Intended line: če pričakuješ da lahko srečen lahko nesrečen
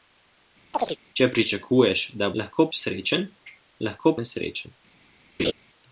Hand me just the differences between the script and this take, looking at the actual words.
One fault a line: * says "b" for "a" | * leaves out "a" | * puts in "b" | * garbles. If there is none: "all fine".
all fine